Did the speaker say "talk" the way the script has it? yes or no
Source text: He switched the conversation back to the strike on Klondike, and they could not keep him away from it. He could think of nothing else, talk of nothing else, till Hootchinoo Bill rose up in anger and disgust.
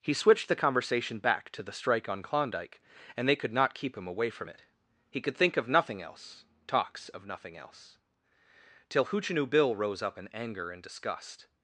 no